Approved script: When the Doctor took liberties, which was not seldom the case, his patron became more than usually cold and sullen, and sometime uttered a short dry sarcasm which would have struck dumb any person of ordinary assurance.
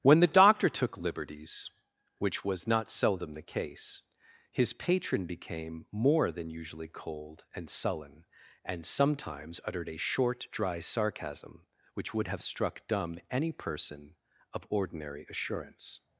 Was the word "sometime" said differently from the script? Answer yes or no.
yes